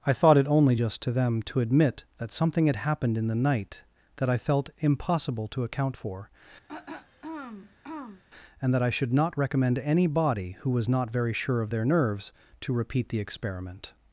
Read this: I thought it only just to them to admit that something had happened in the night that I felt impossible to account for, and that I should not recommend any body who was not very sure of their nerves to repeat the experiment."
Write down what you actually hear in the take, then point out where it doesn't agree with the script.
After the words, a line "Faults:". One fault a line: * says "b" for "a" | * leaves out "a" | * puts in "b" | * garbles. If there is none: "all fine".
I thought it only just to them to admit that something had happened in the night that I felt impossible to account for, and that I should not recommend any body who was not very sure of their nerves to repeat the experiment."
Faults:
all fine